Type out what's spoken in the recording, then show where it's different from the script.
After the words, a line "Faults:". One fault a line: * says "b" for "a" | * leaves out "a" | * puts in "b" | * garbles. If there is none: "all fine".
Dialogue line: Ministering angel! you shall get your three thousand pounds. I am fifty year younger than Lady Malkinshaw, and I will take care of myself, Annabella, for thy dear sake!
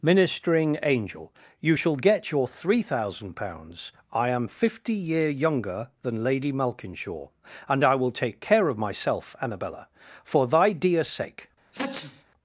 Ministering angel! you shall get your three thousand pounds. I am fifty year younger than Lady Malkinshaw, and I will take care of myself, Annabella, for thy dear sake!
Faults:
all fine